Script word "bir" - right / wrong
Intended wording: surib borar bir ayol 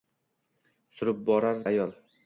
wrong